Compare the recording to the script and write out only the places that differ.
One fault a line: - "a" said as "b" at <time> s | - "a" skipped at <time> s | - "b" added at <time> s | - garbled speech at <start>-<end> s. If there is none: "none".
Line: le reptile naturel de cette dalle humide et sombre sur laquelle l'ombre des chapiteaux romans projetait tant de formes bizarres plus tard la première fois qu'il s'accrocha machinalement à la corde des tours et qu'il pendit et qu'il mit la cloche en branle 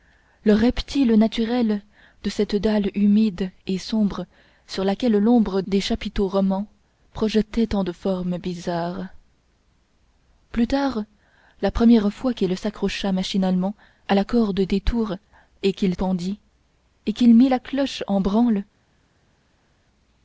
none